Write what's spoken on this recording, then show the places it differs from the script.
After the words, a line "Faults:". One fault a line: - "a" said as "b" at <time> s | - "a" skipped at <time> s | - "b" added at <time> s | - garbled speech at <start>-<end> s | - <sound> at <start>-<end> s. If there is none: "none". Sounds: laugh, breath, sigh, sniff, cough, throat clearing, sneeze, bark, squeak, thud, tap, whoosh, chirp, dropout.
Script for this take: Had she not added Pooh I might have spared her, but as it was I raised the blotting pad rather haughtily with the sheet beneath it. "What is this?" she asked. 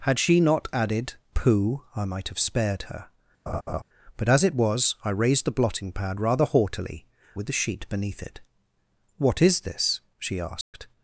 Had she not added Pooh I might have spared her, but as it was I raised the blotting pad rather haughtily with the sheet beneath it. "What is this?" she asked.
Faults:
- laugh at 3.5-3.8 s
- dropout at 10.6-10.7 s